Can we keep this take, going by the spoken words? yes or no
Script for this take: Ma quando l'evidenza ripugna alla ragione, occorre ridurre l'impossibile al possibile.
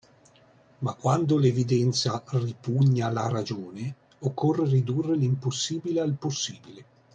yes